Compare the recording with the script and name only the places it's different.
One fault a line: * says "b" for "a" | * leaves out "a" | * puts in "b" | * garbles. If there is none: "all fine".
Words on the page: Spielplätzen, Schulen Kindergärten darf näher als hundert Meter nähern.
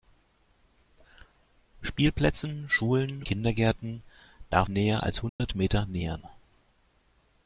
all fine